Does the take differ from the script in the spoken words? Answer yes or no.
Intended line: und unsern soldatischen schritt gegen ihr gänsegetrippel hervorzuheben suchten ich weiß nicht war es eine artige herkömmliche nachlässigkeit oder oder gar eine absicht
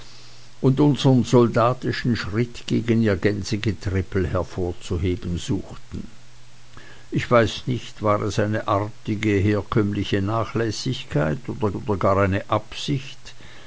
no